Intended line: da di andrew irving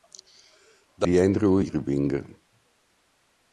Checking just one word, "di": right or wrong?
right